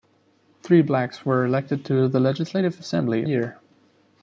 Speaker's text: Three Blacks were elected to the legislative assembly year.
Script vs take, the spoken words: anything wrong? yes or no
no